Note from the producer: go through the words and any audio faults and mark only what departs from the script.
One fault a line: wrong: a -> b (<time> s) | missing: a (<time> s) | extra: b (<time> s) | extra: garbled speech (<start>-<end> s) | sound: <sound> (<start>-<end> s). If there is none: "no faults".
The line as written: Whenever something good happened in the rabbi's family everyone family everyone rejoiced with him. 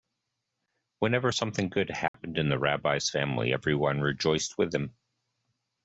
sound: dropout (2.1-2.1 s)
missing: family everyone (4.0 s)